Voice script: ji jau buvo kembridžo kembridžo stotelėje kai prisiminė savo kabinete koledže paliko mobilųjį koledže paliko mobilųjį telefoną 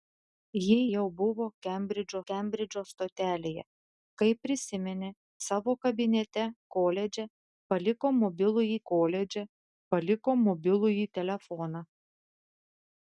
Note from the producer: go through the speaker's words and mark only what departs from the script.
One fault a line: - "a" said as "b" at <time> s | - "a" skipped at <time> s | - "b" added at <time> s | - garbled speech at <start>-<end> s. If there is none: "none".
none